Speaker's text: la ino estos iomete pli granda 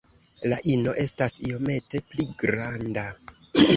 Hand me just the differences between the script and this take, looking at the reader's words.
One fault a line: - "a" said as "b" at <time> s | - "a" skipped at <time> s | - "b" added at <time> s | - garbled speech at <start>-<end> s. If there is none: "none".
- "estos" said as "estas" at 1.0 s